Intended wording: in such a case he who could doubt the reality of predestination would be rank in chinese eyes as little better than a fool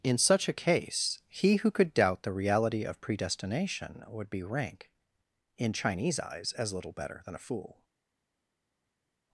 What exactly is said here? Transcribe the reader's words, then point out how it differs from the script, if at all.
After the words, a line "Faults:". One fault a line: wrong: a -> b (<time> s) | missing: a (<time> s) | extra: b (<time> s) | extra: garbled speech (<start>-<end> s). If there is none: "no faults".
in such a case he who could doubt the reality of predestination would be rank in chinese eyes as little better than a fool
Faults:
no faults